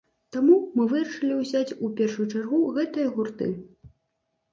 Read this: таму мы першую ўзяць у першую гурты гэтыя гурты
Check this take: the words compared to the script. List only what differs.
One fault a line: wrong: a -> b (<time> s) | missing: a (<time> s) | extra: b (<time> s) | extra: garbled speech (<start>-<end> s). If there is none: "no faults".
wrong: першую -> вырашылі (0.9 s)
wrong: гурты -> чаргу (2.4 s)